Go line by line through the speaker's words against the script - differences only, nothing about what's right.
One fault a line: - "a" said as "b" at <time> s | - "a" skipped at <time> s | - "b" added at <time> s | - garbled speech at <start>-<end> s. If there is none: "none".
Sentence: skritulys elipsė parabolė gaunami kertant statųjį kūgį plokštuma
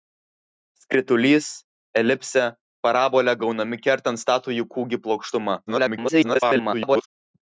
- garbled speech at 5.7-7.1 s